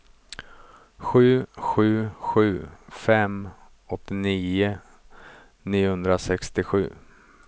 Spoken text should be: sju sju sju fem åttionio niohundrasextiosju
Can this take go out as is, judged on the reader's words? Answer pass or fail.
pass